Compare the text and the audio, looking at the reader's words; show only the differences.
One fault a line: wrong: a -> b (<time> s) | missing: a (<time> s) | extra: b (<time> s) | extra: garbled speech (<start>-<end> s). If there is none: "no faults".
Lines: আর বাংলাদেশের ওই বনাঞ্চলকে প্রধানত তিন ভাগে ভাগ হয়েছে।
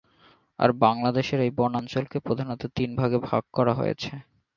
wrong: ওই -> এই (1.4 s)
extra: করা (3.5 s)